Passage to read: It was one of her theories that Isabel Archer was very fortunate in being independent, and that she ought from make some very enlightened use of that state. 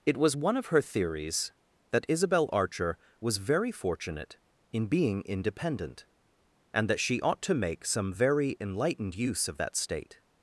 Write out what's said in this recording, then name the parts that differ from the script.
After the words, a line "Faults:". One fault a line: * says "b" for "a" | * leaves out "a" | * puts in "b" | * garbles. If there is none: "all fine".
It was one of her theories that Isabel Archer was very fortunate in being independent, and that she ought to make some very enlightened use of that state.
Faults:
* says "to" for "from"